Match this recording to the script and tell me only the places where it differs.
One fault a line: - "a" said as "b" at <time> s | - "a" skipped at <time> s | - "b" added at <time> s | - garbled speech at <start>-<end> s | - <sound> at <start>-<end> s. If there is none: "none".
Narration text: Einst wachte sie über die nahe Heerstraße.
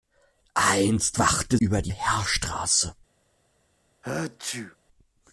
- "sie" skipped at 1.6 s
- "nahe" skipped at 1.9 s
- sneeze at 4.0-4.8 s